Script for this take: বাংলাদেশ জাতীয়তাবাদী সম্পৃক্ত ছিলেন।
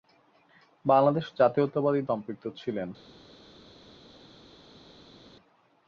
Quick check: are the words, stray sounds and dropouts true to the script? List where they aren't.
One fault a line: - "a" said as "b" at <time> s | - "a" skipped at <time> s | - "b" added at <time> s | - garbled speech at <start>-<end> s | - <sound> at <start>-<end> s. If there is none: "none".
none